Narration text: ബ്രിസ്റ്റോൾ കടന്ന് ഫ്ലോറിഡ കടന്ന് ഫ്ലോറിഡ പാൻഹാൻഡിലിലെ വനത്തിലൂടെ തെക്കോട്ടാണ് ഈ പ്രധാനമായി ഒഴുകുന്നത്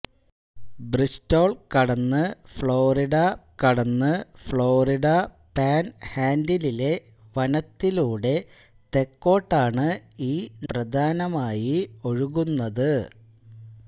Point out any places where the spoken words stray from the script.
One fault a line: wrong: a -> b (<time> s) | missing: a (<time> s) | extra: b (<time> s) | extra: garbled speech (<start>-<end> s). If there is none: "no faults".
no faults